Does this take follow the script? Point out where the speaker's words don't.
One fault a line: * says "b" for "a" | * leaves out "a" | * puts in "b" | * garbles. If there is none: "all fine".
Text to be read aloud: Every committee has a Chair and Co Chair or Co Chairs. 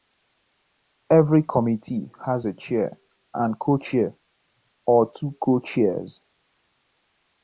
* puts in "two"